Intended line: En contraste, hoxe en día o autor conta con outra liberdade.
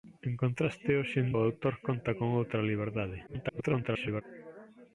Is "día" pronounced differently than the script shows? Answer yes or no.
yes